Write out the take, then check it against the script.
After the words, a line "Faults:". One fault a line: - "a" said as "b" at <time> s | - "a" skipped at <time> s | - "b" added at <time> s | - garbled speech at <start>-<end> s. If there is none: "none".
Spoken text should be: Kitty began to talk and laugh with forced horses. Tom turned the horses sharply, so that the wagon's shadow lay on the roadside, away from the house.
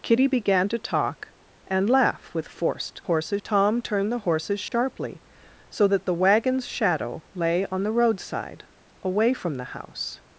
Kitty began to talk and laugh with forced horses. Tom turned the horses sharply, so that the wagon's shadow lay on the roadside, away from the house.
Faults:
none